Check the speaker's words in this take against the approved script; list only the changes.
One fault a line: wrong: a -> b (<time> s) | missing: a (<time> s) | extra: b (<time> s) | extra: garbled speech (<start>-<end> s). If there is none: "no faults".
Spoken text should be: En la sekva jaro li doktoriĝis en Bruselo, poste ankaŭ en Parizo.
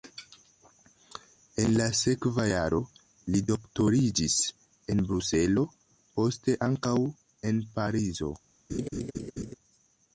no faults